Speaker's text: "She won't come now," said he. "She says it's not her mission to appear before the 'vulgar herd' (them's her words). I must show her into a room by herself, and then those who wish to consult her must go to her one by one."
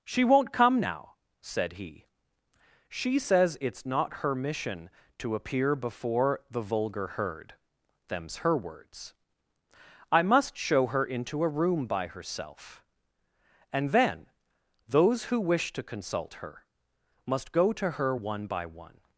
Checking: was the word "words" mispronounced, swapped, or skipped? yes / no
no